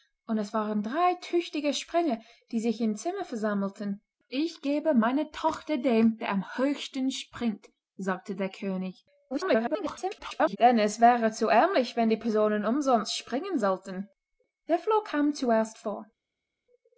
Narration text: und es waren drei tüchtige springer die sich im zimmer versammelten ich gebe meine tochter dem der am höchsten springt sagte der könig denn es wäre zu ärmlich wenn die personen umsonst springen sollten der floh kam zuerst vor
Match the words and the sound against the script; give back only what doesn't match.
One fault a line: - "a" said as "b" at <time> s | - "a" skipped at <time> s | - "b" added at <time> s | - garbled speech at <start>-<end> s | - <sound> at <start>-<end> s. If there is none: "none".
- garbled speech at 9.3-10.6 s